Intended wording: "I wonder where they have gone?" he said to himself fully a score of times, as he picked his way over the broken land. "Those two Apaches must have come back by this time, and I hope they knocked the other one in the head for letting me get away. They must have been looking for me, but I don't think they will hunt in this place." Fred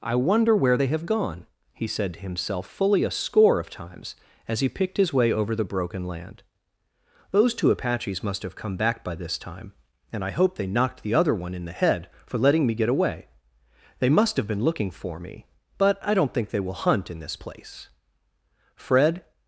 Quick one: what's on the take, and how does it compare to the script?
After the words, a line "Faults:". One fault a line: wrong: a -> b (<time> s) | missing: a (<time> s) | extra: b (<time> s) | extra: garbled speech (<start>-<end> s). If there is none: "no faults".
"I wonder where they have gone?" he said to himself fully a score of times, as he picked his way over the broken land. "Those two Apaches must have come back by this time, and I hope they knocked the other one in the head for letting me get away. They must have been looking for me, but I don't think they will hunt in this place." Fred
Faults:
no faults